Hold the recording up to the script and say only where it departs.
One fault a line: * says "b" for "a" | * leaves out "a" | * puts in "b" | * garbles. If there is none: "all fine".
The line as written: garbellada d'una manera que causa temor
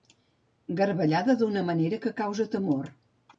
all fine